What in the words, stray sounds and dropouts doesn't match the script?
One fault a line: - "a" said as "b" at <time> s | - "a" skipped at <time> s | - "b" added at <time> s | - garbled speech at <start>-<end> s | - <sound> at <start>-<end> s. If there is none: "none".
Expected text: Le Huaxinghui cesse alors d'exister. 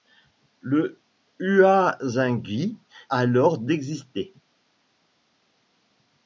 - "cesse" skipped at 2.8 s